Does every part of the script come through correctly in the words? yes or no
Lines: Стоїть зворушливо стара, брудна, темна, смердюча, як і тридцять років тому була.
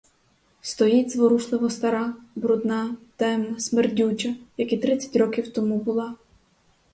yes